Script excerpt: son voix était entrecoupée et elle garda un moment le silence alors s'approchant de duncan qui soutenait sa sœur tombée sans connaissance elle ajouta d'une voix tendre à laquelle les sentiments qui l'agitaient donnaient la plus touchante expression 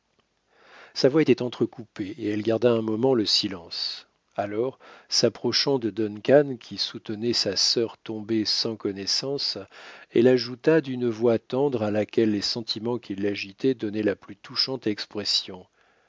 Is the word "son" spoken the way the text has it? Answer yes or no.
no